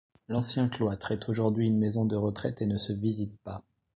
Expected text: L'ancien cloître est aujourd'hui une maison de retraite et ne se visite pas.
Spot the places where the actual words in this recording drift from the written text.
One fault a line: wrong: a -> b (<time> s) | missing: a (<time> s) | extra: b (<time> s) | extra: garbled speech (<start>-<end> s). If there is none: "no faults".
no faults